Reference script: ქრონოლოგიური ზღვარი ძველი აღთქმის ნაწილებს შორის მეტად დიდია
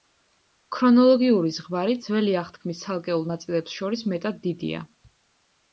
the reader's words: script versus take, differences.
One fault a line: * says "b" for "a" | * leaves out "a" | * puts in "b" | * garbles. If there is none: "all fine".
* puts in "ცალკეულ"